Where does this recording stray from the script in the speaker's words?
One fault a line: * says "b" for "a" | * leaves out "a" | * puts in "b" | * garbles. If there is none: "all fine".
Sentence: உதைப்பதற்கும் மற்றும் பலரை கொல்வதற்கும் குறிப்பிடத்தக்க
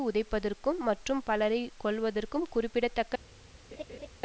all fine